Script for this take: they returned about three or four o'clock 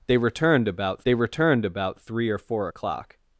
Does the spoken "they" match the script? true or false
true